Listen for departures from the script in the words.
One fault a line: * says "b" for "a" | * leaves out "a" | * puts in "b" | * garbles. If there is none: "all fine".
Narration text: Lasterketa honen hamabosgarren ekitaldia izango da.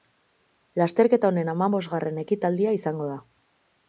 all fine